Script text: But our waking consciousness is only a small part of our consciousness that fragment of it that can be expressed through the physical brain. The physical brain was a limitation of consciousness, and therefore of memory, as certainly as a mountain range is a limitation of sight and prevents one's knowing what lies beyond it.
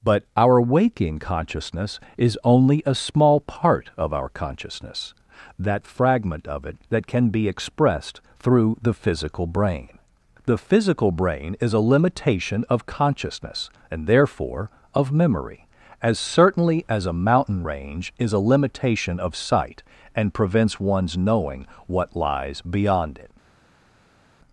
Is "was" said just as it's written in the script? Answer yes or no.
no